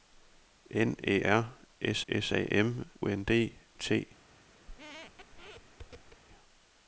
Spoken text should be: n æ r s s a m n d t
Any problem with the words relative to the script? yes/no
no